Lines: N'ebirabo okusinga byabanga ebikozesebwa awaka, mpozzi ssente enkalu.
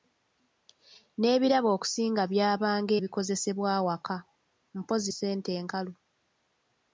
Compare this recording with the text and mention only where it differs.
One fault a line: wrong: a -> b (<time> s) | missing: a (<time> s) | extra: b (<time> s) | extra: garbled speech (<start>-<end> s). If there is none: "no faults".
no faults